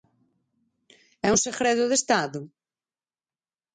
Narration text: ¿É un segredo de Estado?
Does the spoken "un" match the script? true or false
true